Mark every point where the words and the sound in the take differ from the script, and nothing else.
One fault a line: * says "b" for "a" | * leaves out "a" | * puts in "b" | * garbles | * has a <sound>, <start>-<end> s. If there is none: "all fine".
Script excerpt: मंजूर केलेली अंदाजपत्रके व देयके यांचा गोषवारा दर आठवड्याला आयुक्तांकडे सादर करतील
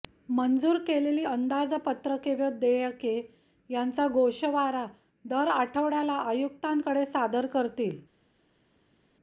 all fine